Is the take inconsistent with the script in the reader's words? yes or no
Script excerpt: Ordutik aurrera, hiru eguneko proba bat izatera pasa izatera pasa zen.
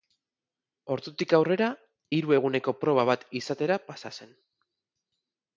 yes